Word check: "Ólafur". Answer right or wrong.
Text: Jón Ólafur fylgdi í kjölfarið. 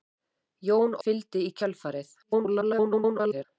wrong